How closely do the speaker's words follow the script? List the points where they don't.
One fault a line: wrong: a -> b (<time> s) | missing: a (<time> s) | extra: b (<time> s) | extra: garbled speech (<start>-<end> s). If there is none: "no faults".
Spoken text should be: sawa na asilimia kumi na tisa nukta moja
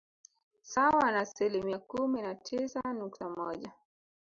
no faults